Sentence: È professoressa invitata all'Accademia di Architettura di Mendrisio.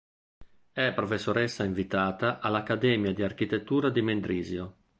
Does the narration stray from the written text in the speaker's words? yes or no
no